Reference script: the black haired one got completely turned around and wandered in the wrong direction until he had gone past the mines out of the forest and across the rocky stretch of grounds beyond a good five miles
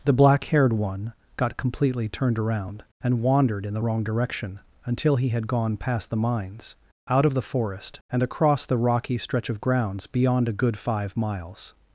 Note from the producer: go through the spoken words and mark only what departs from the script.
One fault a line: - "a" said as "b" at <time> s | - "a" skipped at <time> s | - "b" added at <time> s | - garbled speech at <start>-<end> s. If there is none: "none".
none